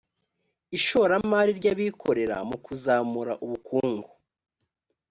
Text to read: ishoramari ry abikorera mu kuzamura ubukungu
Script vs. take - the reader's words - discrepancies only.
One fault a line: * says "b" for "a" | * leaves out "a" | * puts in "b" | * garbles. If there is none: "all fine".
all fine